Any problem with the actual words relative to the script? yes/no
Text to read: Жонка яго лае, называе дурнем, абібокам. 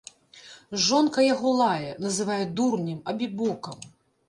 no